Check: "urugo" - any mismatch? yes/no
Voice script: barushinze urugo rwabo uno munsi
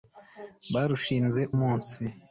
yes